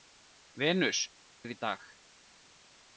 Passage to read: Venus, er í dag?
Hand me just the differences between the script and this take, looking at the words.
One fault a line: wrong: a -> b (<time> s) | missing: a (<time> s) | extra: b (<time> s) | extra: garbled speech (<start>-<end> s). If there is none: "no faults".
no faults